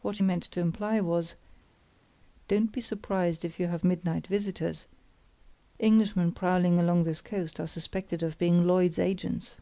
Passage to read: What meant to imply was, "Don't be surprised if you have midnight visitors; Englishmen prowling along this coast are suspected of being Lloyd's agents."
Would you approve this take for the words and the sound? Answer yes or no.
yes